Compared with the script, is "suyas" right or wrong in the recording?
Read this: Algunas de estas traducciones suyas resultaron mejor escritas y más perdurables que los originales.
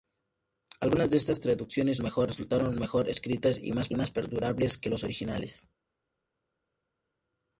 wrong